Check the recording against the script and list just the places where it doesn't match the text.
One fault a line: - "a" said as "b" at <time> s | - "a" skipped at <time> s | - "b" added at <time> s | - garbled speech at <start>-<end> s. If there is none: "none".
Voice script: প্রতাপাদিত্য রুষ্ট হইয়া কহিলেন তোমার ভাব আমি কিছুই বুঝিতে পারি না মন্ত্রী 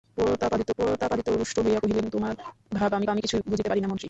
- "প্রতাপাদিত্য" added at 0.8 s
- "আমি" added at 3.1 s